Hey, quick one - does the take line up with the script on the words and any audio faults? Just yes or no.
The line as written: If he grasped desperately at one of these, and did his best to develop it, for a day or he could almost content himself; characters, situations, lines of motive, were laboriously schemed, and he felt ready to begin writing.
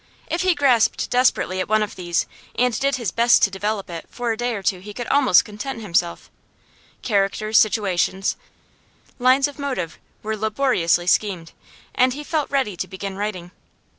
no